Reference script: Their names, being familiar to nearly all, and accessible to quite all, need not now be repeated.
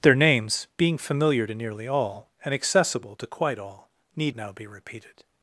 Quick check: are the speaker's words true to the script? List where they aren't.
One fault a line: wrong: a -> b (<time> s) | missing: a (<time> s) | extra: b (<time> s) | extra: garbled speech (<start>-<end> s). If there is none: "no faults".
missing: not (4.3 s)